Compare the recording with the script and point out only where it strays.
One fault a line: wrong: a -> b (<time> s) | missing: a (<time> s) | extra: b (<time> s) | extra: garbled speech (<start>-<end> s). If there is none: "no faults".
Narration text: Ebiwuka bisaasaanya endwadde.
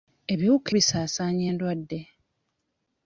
no faults